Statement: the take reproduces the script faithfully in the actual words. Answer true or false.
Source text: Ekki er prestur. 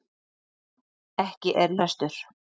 true